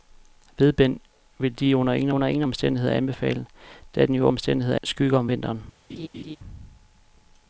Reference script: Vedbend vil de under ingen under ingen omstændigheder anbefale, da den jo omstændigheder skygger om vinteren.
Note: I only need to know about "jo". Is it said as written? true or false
true